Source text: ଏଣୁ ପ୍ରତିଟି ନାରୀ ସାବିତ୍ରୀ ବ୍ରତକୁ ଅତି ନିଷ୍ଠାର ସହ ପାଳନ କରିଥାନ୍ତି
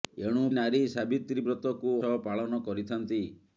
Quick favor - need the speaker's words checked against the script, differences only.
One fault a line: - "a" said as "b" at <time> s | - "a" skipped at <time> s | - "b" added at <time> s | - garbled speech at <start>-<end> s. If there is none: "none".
- "ପ୍ରତିଟି" skipped at 0.5 s
- "ଅତି ନିଷ୍ଠାର" skipped at 1.9 s